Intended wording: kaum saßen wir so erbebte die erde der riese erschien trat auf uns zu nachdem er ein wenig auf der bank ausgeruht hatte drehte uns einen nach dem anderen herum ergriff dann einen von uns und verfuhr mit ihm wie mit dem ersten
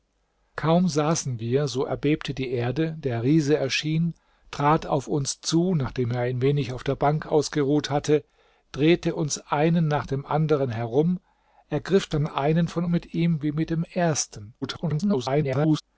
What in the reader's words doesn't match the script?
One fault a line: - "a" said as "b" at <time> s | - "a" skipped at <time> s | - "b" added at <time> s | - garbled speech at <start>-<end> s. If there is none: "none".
- "uns und verfuhr" skipped at 12.8 s
- garbled speech at 14.6-15.8 s